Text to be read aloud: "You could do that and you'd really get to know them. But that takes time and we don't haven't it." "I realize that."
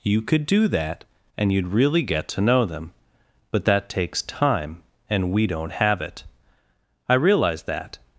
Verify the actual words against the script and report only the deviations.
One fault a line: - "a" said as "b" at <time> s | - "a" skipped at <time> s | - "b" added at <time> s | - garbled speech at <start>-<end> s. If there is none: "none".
- "haven't" said as "have" at 5.7 s